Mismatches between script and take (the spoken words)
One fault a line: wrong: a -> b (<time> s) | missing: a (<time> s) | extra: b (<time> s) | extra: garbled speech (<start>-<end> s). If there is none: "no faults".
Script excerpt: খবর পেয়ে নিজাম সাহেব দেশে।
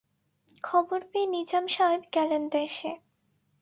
extra: গেলেন (2.1 s)